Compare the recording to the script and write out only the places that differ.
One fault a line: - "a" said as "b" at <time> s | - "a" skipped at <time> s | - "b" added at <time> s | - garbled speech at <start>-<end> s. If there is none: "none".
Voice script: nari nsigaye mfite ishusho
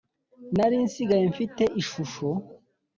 none